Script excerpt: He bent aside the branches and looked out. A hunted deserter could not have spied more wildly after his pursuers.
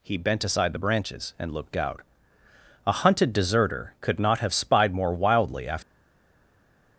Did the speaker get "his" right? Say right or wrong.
wrong